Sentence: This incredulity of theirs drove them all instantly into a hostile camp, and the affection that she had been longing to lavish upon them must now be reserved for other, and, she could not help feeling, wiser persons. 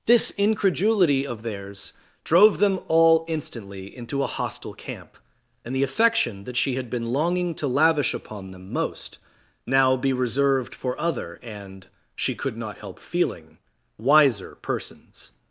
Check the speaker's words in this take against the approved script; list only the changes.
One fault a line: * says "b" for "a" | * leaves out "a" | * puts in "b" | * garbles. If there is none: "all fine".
* says "most" for "must"